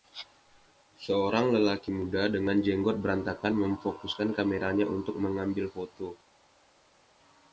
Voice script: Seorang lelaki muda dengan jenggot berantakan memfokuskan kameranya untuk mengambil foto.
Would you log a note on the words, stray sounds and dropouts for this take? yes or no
no